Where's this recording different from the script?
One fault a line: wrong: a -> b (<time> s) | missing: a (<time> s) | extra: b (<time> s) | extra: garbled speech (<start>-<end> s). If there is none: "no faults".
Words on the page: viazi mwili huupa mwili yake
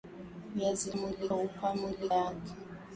no faults